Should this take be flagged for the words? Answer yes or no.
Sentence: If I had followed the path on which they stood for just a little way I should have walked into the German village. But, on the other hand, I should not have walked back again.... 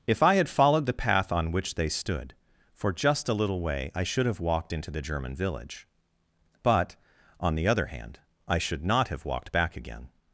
no